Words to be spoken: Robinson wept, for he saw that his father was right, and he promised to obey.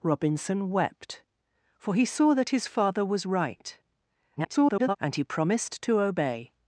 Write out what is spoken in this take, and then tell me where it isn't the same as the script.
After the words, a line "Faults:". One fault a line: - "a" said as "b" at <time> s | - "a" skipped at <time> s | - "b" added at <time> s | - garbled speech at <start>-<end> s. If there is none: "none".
Robinson wept, for he saw that his father was right, [garbled] and he promised to obey.
Faults:
- garbled speech at 4.4-5.0 s